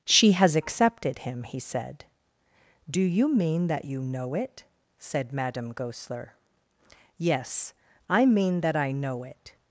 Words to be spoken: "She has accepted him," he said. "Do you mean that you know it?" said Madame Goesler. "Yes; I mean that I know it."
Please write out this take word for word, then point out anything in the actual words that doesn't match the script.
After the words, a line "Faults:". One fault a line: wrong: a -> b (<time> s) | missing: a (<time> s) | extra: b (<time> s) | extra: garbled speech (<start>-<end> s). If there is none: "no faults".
"She has accepted him," he said. "Do you mean that you know it?" said Madame Goesler. "Yes; I mean that I know it."
Faults:
no faults